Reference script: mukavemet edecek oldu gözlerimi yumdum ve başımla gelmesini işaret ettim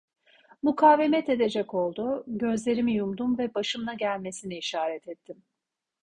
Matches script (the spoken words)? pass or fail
pass